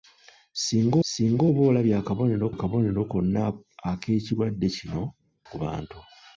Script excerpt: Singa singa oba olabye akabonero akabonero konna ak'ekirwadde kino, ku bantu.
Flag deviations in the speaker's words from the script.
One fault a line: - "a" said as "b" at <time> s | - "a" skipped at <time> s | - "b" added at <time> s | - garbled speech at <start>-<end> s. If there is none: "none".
none